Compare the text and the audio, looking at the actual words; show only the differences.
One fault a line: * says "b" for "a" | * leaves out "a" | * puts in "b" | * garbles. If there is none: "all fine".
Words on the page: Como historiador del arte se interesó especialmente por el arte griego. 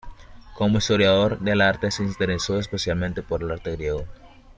all fine